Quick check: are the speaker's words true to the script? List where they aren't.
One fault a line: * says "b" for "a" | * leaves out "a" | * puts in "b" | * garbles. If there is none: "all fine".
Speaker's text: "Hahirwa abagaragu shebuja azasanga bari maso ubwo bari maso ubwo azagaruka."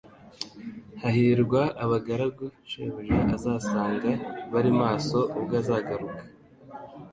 * leaves out "bari maso ubwo"